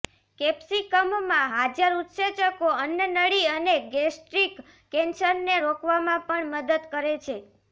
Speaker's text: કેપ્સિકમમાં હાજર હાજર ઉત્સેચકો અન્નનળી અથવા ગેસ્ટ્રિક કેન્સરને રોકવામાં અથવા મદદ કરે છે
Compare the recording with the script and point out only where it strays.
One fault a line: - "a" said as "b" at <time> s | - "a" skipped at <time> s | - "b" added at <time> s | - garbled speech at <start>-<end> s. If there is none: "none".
- "હાજર" skipped at 2.0 s
- "અથવા" said as "અને" at 3.5 s
- "અથવા" said as "પણ" at 6.3 s